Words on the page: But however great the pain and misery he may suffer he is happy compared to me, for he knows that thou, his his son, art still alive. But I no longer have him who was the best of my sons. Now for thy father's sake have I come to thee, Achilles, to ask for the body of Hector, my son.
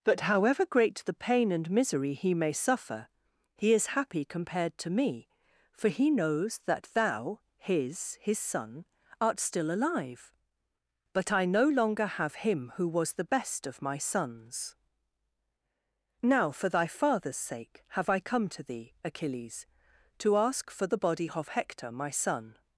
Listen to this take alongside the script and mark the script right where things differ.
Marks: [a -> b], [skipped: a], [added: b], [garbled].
But however great the pain and misery he may suffer he is happy compared to me, for he knows that thou, his his son, art still alive. But I no longer have him who was the best of my sons. Now for thy father's sake have I come to thee, Achilles, to ask for the body of Hector, my son.